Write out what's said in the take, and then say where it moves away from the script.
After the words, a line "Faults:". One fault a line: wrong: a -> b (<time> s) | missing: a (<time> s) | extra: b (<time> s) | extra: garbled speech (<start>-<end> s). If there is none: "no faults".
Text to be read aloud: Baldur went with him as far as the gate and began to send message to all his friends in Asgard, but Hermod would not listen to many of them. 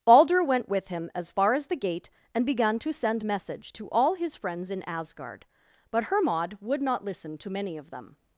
Baldur went with him as far as the gate and began to send message to all his friends in Asgard, but Hermod would not listen to many of them.
Faults:
no faults